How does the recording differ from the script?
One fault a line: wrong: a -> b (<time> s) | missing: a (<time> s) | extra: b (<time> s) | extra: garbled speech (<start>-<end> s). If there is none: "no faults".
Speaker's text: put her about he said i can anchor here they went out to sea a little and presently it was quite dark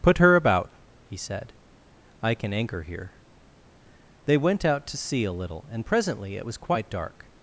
no faults